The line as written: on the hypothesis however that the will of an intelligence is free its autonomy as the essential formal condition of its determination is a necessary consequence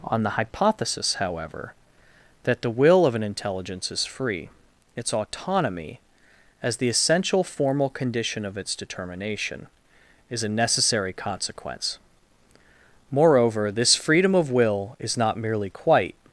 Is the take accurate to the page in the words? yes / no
no